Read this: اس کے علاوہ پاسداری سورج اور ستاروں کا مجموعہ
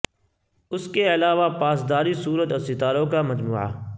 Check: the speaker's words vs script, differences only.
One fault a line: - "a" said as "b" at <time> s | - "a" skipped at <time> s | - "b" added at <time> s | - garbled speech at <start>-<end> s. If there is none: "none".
none